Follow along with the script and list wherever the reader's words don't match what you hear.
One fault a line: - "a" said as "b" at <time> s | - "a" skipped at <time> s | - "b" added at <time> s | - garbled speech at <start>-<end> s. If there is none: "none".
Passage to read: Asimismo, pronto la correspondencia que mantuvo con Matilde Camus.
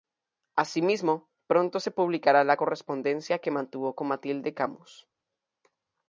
- "se publicará" added at 1.8 s